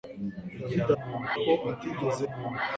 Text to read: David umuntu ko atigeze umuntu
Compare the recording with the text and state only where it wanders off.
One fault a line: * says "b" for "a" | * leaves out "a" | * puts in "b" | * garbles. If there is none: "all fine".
all fine